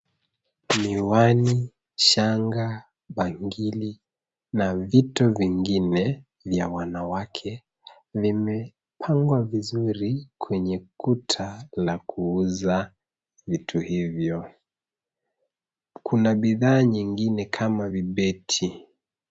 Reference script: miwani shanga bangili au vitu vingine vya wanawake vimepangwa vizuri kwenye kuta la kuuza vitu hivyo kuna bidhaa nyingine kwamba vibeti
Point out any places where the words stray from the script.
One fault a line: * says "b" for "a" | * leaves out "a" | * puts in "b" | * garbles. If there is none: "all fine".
* says "na" for "au"
* says "kama" for "kwamba"